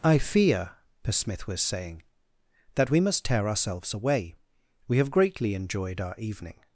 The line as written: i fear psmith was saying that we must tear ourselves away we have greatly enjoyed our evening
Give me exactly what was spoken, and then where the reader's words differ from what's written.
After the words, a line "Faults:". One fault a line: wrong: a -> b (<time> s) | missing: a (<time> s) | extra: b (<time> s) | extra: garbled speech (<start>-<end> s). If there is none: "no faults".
i fear psmith was saying that we must tear ourselves away we have greatly enjoyed our evening
Faults:
no faults